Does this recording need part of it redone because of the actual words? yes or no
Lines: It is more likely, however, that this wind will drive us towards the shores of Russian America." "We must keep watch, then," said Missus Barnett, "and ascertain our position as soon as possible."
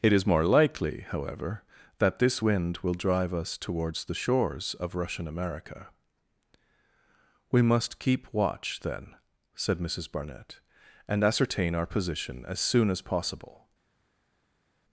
no